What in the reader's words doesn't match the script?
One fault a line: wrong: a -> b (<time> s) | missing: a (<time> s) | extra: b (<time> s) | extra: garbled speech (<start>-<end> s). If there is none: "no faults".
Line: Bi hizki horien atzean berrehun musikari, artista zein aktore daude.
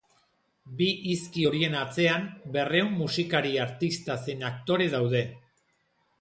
no faults